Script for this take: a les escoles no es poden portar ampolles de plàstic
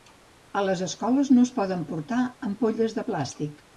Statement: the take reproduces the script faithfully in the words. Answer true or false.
true